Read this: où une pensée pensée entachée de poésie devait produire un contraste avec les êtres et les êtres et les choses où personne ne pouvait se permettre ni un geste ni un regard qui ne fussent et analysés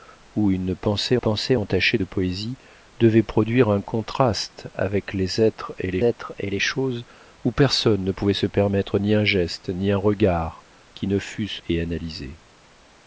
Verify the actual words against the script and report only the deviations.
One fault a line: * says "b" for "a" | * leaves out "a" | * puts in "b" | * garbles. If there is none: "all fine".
all fine